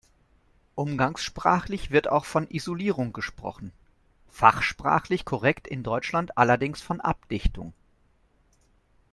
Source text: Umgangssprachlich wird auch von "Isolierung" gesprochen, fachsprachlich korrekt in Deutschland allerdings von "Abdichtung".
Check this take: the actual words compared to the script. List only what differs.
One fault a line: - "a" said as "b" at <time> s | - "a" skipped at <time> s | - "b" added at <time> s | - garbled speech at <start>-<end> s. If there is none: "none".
none